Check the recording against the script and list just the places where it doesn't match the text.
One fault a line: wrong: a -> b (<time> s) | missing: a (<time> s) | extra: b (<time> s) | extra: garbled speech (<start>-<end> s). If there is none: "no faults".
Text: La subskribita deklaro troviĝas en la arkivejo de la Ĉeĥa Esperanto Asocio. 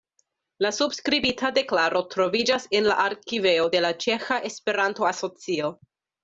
no faults